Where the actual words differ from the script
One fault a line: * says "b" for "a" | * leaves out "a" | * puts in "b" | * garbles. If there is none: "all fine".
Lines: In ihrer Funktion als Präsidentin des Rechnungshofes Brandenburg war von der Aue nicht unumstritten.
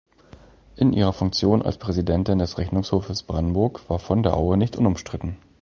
all fine